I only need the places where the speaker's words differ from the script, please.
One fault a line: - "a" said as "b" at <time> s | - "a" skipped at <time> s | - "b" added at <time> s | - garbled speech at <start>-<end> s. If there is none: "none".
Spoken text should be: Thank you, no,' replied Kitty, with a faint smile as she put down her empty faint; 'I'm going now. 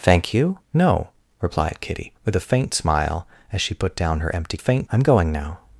none